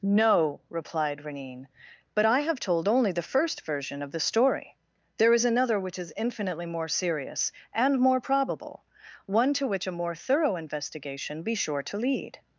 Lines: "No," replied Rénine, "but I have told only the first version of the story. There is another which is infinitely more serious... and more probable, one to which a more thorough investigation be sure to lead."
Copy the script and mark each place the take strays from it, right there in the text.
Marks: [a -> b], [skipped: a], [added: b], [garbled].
"No," replied Rénine, "but I have told only the first version of the story. There is another which is infinitely more serious... and more probable, one to which a more thorough investigation be sure to lead."